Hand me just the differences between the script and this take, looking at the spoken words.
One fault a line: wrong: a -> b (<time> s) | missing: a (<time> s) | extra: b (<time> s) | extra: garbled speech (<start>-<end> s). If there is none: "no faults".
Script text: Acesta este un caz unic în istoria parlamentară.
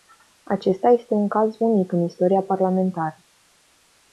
no faults